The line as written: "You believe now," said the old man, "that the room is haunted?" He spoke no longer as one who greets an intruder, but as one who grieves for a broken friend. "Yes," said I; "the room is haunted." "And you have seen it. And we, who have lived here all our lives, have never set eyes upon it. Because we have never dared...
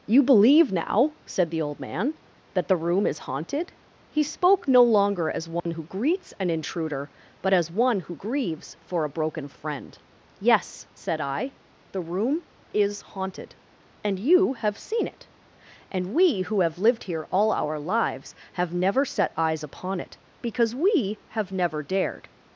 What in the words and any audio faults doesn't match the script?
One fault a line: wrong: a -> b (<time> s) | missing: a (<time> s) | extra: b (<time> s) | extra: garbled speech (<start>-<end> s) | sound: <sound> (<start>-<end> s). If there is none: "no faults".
sound: dropout (5.6-5.7 s)